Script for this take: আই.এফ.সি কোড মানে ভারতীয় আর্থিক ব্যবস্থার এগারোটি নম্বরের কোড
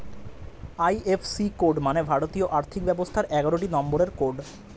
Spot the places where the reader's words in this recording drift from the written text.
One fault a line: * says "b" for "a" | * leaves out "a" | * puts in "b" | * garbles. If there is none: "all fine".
all fine